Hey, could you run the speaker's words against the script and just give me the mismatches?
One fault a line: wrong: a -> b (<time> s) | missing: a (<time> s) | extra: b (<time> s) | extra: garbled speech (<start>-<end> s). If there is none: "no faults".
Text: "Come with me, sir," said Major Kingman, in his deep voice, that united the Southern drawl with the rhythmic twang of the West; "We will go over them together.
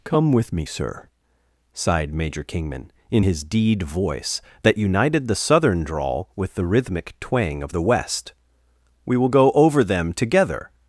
wrong: said -> sighed (1.7 s)
wrong: deep -> deed (3.4 s)